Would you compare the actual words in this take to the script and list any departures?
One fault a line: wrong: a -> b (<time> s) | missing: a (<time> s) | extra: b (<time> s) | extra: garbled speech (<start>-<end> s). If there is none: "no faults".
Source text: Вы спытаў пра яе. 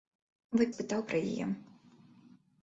no faults